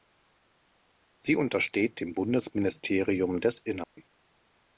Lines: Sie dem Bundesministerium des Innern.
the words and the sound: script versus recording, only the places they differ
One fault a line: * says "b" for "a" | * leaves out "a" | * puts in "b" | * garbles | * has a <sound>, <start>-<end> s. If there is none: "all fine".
* puts in "untersteht"
* has a dropout, 3.8-4.0 s